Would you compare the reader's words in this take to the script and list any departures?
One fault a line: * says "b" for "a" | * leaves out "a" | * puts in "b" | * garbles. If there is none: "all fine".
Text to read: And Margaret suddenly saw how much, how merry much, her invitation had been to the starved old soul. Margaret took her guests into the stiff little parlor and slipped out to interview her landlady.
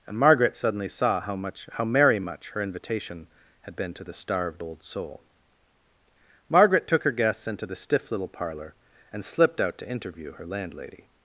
all fine